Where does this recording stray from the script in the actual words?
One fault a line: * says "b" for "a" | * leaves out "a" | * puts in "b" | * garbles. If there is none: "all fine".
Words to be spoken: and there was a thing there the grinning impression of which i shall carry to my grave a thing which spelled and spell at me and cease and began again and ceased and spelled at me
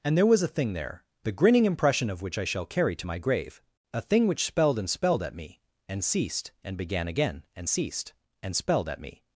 * says "spelled" for "spell"
* says "ceased" for "cease"